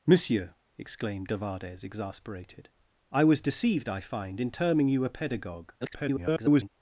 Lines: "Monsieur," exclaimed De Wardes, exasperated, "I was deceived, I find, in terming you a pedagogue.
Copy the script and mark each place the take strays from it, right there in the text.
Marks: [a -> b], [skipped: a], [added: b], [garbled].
"Monsieur," exclaimed De Wardes, exasperated, "I was deceived, I find, in terming you a pedagogue. [garbled]